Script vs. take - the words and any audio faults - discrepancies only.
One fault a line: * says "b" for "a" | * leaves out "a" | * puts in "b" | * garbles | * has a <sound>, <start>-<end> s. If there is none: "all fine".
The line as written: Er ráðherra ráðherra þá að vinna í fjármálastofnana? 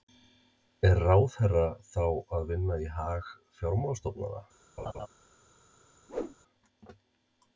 * leaves out "ráðherra"
* puts in "hag"
* has a laugh, 4.8-5.1 s
* has a whoosh, 6.1-6.4 s